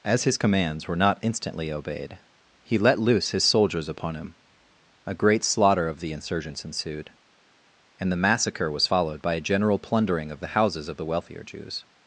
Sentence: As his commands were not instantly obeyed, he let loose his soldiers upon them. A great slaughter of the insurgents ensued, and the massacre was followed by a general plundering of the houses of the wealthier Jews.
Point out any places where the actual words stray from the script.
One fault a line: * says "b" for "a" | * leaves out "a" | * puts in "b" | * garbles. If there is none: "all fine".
* says "him" for "them"